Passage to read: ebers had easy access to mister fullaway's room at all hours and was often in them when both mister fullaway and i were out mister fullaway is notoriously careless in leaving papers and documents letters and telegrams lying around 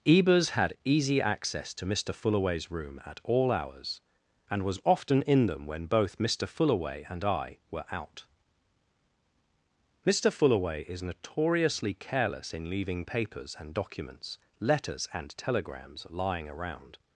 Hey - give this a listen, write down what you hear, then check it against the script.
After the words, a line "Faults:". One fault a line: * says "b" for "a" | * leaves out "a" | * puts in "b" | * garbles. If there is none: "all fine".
ebers had easy access to mister fullaway's room at all hours and was often in them when both mister fullaway and i were out mister fullaway is notoriously careless in leaving papers and documents letters and telegrams lying around
Faults:
all fine